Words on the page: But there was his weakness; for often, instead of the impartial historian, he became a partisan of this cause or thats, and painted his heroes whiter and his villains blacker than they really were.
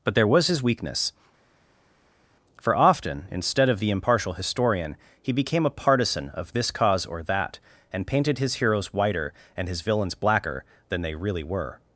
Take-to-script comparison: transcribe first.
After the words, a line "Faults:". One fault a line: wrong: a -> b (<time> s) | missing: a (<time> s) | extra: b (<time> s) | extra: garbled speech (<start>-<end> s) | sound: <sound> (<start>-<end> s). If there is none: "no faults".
But there was his weakness; for often, instead of the impartial historian, he became a partisan of this cause or that, and painted his heroes whiter and his villains blacker than they really were.
Faults:
wrong: thats -> that (7.2 s)